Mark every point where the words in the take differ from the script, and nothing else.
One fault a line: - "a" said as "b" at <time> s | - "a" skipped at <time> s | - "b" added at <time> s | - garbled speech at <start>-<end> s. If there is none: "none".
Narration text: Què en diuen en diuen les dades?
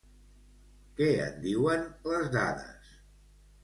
- "en diuen" skipped at 1.8 s